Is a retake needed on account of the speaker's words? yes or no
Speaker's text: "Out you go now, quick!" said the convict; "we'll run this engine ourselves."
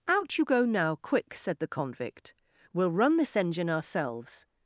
no